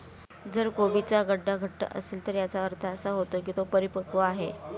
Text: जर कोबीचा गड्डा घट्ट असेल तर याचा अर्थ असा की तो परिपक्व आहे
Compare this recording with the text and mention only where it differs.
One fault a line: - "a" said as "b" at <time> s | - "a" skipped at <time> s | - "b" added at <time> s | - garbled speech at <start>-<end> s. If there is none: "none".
- "होतो" added at 3.1 s